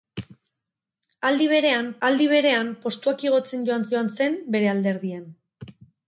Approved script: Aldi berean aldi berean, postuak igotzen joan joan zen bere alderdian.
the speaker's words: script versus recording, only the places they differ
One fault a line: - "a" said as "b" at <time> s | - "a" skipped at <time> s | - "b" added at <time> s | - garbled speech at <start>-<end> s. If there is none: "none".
none